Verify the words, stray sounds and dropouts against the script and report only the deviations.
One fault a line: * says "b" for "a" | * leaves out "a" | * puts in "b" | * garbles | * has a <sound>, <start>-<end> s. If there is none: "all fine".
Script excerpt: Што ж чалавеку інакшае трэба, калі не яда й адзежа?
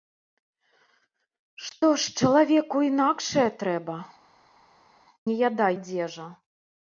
* leaves out "калі"
* leaves out "й"